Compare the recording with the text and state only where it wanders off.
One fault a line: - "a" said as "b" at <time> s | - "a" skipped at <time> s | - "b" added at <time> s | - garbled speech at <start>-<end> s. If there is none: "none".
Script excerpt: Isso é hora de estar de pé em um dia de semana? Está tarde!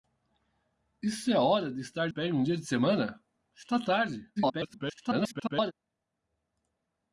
- "de" skipped at 2.1 s
- garbled speech at 4.4-5.7 s